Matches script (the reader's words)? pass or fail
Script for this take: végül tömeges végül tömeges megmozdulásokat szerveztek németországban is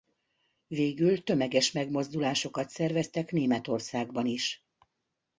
fail